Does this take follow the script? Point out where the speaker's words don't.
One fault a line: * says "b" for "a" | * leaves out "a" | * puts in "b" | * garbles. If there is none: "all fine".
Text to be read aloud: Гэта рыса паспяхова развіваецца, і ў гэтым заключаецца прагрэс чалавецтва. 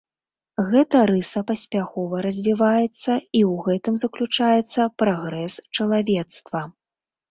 all fine